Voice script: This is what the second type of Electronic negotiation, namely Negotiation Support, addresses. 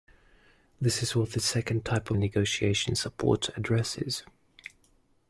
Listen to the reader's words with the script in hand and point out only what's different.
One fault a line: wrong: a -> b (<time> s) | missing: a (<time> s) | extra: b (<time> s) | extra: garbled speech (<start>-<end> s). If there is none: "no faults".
missing: Electronic negotiation namely (2.2 s)